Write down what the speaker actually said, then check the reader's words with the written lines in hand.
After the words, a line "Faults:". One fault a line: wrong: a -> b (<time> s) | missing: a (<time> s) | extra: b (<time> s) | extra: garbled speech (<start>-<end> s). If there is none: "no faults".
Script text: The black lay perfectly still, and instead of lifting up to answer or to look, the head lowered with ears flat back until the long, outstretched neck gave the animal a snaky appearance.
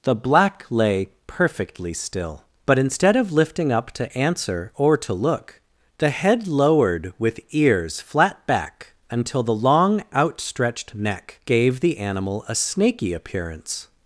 The black lay perfectly still, but instead of lifting up to answer or to look, the head lowered with ears flat back until the long, outstretched neck gave the animal a snaky appearance.
Faults:
wrong: and -> but (2.6 s)